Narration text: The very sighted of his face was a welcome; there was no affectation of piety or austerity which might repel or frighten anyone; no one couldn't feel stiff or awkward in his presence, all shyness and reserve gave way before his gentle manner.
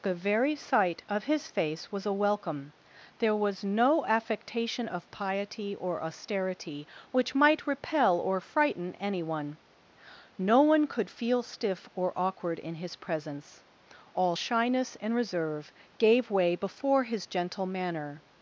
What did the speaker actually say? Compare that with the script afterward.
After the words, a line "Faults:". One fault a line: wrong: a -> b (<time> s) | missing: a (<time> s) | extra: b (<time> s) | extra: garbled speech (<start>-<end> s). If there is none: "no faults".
The very sight of his face was a welcome; there was no affectation of piety or austerity which might repel or frighten anyone; no one could feel stiff or awkward in his presence, all shyness and reserve gave way before his gentle manner.
Faults:
wrong: sighted -> sight (0.6 s)
wrong: couldn't -> could (10.9 s)